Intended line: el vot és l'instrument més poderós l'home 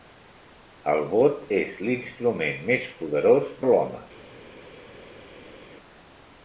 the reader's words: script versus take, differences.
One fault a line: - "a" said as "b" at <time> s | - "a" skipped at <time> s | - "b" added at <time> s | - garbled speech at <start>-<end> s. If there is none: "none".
none